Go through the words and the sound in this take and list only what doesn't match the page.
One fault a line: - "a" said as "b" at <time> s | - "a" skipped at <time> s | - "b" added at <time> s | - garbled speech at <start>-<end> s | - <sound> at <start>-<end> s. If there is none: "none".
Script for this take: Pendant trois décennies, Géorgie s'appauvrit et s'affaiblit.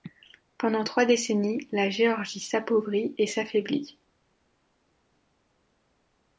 - "la" added at 1.7 s